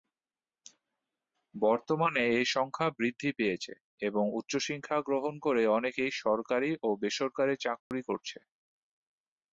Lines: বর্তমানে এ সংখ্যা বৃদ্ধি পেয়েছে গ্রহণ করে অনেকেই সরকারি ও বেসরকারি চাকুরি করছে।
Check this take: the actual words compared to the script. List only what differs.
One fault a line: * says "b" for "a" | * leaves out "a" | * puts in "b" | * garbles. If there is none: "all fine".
* puts in "এবং উচ্চশিক্ষা"